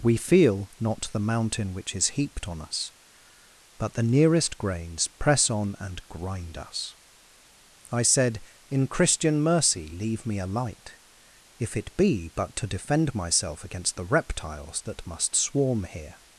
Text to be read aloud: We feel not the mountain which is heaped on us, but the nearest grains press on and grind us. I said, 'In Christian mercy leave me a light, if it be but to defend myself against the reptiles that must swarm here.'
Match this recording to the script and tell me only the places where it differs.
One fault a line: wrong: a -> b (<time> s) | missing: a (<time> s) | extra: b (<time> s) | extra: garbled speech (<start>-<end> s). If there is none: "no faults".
no faults